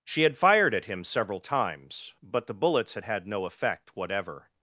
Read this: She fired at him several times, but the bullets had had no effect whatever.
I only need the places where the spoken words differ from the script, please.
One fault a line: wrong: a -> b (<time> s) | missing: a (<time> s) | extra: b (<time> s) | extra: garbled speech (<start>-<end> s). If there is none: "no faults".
extra: had (0.2 s)